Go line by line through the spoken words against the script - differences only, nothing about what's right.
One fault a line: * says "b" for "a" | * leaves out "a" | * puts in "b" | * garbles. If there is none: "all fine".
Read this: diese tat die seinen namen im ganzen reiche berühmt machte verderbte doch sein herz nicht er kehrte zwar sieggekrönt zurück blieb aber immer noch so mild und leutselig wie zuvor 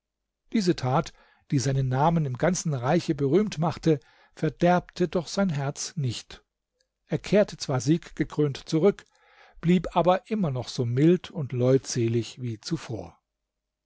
all fine